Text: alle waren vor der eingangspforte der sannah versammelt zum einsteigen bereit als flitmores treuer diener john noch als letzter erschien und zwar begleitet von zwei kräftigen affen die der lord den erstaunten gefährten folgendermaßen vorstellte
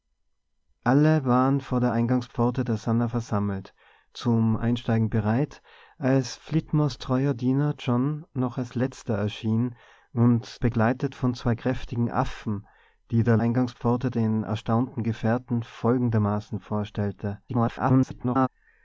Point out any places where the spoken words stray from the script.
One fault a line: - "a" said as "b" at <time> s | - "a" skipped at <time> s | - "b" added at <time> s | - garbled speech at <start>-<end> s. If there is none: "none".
- "zwar" skipped at 10.5 s
- "lord" said as "eingangspforte" at 13.4 s
- garbled speech at 17.5-18.5 s